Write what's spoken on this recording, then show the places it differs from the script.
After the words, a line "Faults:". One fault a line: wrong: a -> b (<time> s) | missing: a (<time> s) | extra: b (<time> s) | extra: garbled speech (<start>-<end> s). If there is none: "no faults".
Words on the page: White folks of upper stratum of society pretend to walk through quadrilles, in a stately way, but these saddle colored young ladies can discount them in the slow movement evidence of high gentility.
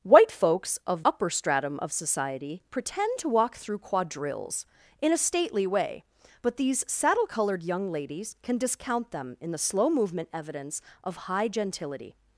White folks of upper stratum of society pretend to walk through quadrilles, in a stately way, but these saddle colored young ladies can discount them in the slow movement evidence of high gentility.
Faults:
no faults